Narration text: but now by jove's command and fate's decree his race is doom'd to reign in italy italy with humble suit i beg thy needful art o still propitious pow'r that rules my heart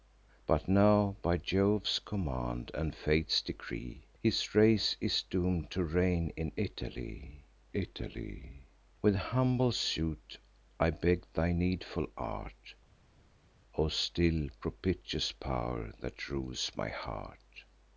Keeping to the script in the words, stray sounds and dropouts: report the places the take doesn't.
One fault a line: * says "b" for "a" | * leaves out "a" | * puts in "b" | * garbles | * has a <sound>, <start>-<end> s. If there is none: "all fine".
all fine